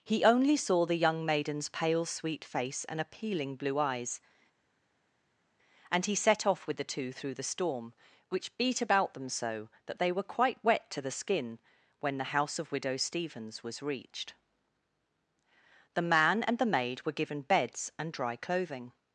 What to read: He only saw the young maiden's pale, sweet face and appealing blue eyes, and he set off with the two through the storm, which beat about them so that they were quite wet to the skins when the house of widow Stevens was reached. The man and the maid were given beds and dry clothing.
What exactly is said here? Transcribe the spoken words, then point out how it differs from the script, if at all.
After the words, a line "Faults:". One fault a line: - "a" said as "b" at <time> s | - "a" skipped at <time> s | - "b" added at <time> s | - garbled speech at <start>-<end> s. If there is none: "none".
He only saw the young maiden's pale, sweet face and appealing blue eyes, and he set off with the two through the storm, which beat about them so that they were quite wet to the skin when the house of widow Stevens was reached. The man and the maid were given beds and dry clothing.
Faults:
- "skins" said as "skin" at 11.1 s